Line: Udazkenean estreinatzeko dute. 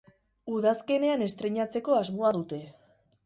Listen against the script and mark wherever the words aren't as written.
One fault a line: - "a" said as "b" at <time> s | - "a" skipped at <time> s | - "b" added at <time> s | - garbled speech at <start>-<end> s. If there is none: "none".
- "asmoa" added at 2.0 s